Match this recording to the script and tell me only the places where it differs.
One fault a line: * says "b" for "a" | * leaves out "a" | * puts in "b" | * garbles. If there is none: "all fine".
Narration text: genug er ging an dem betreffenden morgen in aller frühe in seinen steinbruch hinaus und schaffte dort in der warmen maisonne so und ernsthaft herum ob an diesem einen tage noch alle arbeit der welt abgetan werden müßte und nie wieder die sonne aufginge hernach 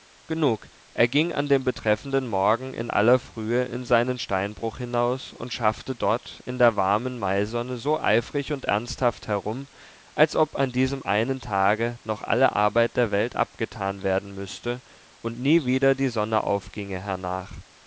* puts in "eifrig"
* puts in "als"